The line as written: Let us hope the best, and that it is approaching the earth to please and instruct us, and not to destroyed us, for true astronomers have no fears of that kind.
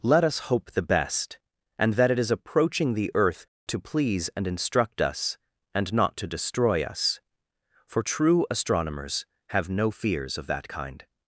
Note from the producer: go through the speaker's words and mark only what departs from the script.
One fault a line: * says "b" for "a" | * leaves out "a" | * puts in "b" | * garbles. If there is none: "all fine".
* says "destroy" for "destroyed"